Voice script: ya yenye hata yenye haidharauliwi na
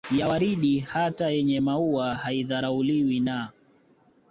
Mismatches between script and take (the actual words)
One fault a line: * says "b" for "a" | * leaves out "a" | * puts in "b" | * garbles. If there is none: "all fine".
* says "waridi" for "yenye"
* puts in "maua"